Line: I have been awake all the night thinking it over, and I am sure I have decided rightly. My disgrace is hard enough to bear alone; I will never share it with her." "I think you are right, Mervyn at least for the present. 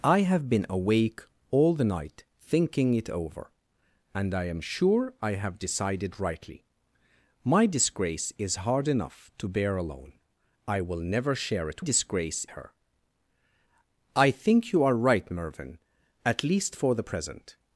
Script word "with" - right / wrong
wrong